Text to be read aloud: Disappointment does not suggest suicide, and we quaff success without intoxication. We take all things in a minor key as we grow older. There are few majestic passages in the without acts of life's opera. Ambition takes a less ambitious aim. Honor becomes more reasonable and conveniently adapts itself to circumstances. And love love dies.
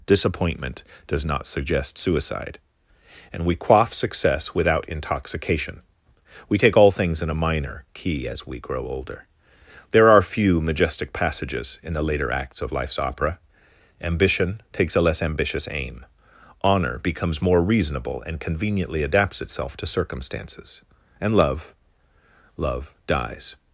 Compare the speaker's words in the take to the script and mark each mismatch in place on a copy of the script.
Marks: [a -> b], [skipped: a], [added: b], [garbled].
Disappointment does not suggest suicide, and we quaff success without intoxication. We take all things in a minor key as we grow older. There are few majestic passages in the [without -> later] acts of life's opera. Ambition takes a less ambitious aim. Honor becomes more reasonable and conveniently adapts itself to circumstances. And love love dies.